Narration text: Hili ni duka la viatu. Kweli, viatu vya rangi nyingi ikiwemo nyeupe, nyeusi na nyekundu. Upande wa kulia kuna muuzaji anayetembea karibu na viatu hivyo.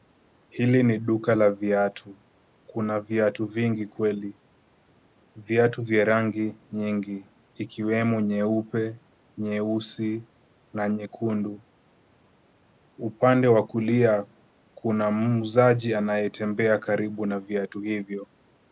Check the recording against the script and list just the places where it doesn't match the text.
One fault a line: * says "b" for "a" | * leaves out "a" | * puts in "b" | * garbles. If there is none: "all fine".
* puts in "Kuna viatu vingi"